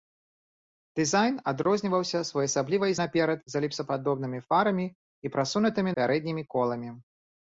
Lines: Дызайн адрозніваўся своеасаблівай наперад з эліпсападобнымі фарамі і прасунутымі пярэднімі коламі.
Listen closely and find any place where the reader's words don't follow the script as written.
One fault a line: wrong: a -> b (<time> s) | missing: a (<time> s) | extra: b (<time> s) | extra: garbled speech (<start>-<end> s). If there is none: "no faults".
no faults